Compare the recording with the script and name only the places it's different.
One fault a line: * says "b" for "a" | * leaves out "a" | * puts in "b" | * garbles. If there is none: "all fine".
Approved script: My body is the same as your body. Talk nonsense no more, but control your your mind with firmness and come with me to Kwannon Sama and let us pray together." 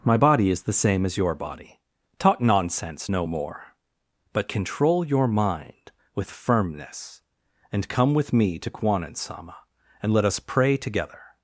* leaves out "your"